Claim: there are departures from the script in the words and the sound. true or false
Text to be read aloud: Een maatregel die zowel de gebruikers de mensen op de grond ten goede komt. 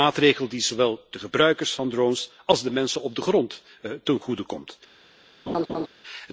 true